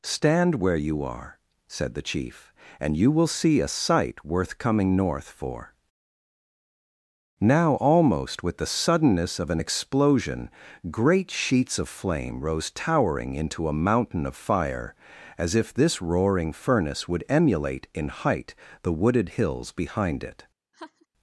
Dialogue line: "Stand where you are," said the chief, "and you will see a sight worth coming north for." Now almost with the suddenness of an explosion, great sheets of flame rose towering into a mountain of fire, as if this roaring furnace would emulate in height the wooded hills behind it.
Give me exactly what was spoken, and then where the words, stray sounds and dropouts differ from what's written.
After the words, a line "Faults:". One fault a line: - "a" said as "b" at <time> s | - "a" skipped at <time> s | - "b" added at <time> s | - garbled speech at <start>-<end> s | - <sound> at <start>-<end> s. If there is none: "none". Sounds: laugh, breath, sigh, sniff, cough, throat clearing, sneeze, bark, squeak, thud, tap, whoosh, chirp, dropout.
"Stand where you are," said the chief, "and you will see a sight worth coming north for." Now almost with the suddenness of an explosion, great sheets of flame rose towering into a mountain of fire, as if this roaring furnace would emulate in height the wooded hills behind it.
Faults:
- laugh at 20.7-21.1 s